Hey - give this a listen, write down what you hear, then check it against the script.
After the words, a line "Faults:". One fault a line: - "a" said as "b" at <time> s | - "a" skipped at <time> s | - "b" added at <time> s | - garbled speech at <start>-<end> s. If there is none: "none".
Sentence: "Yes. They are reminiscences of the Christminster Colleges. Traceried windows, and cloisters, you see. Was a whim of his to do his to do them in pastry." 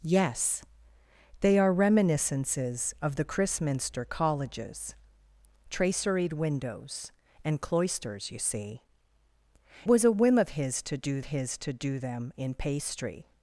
"Yes. They are reminiscences of the Christminster Colleges. Traceried windows, and cloisters, you see. Was a whim of his to do his to do them in pastry."
Faults:
none